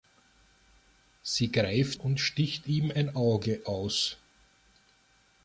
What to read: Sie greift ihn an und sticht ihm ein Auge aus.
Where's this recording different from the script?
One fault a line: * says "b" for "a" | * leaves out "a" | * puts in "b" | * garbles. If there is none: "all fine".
* leaves out "ihn an"